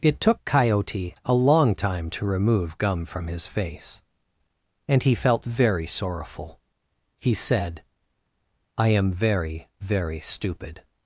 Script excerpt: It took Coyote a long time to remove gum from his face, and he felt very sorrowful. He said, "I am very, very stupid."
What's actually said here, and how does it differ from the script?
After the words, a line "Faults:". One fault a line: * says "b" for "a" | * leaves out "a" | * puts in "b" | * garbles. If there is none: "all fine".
It took Coyote a long time to remove gum from his face, and he felt very sorrowful. He said, "I am very, very stupid."
Faults:
all fine